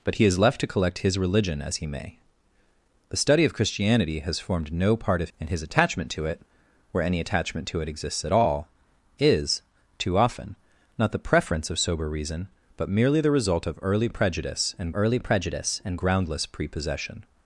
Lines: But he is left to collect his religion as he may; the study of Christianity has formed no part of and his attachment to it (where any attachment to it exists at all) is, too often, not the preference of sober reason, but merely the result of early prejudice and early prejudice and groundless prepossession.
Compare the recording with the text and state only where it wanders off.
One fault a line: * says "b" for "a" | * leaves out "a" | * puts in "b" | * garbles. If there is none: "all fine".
all fine